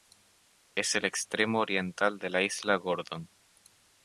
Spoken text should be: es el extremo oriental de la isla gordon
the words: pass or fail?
pass